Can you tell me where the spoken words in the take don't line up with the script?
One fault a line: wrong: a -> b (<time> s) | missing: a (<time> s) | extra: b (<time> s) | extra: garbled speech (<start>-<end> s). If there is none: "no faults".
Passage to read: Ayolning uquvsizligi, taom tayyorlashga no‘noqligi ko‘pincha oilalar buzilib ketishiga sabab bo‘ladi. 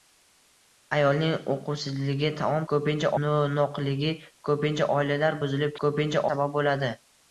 wrong: tayyorlashga -> ko‘pincha (2.7 s)
wrong: ketishiga -> ko‘pincha (5.9 s)